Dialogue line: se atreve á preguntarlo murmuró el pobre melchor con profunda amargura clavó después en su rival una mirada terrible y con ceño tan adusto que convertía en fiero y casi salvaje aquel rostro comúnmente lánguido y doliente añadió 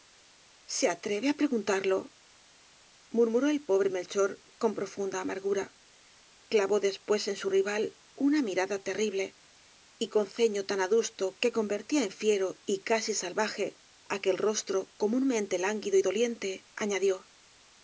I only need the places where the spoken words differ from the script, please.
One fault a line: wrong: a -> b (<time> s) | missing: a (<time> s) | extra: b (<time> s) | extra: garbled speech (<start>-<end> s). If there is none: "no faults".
no faults